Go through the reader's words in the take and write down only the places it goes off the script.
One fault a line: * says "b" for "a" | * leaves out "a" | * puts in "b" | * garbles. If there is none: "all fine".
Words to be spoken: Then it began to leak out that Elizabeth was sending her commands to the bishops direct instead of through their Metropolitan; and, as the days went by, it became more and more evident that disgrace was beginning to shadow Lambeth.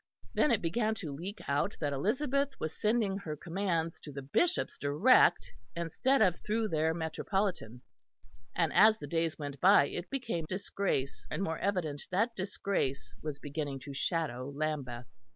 * says "disgrace" for "more"